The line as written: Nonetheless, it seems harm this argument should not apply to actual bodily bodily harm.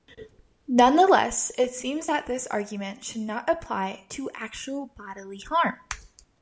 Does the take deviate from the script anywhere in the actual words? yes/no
yes